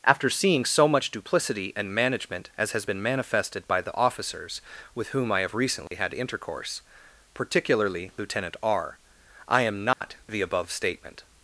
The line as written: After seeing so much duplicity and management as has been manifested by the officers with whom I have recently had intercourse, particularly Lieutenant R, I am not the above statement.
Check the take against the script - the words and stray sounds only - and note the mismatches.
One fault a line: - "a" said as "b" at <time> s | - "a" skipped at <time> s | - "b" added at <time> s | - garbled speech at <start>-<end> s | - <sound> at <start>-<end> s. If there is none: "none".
- dropout at 5.9-5.9 s
- dropout at 9.9-10.0 s